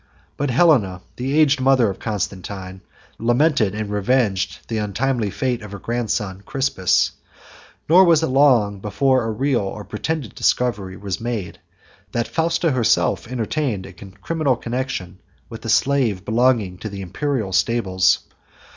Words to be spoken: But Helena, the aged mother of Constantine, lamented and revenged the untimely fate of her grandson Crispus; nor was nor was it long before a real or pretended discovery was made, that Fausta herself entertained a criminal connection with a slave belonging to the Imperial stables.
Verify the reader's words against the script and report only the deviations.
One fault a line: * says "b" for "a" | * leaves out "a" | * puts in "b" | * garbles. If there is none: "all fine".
* leaves out "nor was"